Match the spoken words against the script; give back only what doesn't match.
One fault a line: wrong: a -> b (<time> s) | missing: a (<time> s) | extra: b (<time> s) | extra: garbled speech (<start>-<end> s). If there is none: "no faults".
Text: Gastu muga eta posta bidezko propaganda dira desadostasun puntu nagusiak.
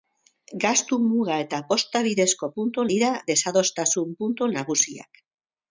wrong: propaganda -> puntu (2.6 s)